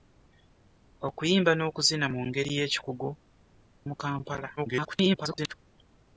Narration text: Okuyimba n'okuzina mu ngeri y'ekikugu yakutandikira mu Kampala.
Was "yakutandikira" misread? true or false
true